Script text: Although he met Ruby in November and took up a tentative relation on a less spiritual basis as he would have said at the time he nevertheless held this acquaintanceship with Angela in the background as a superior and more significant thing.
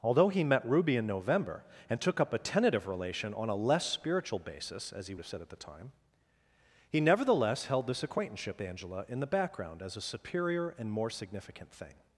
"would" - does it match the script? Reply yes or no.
no